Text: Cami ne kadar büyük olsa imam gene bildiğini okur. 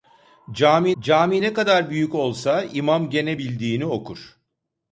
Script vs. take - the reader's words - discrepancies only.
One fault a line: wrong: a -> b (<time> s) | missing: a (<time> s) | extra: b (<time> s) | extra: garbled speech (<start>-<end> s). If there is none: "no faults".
extra: cami (1.0 s)